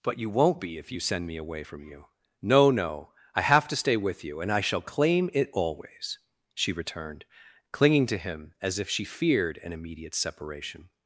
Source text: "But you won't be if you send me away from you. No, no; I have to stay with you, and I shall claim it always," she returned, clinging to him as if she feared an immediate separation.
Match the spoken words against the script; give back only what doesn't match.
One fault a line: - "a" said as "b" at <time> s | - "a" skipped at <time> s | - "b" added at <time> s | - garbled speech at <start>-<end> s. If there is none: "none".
none